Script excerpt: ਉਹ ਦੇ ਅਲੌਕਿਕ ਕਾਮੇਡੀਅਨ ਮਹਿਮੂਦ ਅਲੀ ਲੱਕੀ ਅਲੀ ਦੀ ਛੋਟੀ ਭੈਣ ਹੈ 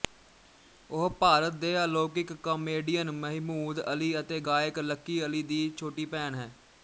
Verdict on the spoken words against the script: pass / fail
fail